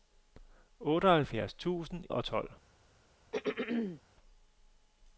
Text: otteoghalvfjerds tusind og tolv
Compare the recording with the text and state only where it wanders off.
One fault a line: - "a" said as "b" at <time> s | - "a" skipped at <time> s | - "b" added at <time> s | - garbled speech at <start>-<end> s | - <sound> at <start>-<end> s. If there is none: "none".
- throat clearing at 3.3-4.0 s